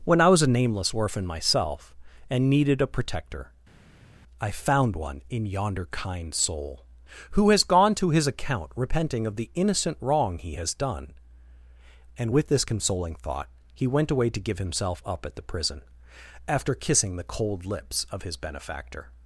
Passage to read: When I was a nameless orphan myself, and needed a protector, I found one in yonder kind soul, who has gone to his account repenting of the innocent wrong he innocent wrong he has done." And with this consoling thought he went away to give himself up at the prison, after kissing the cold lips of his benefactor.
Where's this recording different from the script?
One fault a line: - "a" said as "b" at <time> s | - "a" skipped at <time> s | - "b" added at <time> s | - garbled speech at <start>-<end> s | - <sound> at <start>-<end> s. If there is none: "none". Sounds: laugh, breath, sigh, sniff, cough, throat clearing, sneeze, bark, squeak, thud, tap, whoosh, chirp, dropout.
- "innocent wrong he" skipped at 10.5 s